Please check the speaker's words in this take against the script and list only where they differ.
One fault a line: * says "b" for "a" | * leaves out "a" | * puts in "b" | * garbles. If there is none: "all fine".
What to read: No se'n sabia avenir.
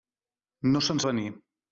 * leaves out "sabia"